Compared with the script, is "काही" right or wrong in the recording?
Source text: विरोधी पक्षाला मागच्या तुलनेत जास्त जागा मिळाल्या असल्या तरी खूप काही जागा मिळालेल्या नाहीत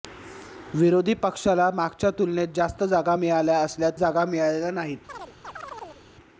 wrong